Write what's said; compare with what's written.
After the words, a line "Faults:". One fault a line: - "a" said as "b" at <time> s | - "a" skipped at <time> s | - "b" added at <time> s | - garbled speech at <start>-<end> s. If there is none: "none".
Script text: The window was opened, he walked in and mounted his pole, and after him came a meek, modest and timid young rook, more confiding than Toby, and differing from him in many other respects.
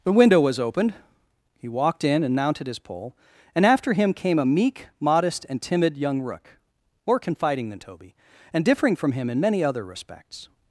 The window was opened, he walked in and mounted his pole, and after him came a meek, modest and timid young rook, more confiding than Toby, and differing from him in many other respects.
Faults:
none